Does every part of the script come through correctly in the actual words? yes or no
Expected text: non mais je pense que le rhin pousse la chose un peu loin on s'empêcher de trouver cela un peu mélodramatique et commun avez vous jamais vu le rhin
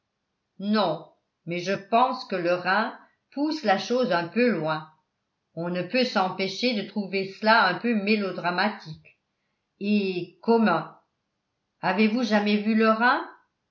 no